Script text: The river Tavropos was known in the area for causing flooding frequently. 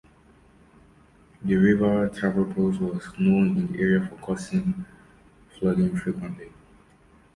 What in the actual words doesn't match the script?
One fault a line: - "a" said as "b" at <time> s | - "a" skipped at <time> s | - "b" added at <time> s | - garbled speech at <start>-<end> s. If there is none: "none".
none